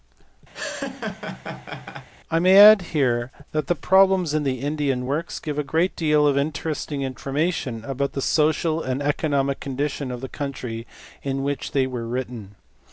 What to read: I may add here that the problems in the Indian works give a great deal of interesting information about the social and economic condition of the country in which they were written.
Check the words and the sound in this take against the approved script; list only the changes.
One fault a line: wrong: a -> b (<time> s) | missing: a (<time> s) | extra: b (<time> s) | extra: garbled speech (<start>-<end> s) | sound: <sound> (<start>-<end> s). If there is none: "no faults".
sound: laugh (0.5-2.1 s)